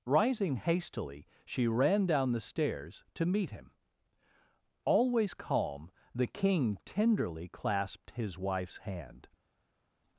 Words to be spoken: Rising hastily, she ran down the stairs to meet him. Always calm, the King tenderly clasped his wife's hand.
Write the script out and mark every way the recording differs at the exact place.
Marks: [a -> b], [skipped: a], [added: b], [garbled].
Rising hastily, she ran down the stairs to meet him. Always calm, the King tenderly clasped his wife's hand.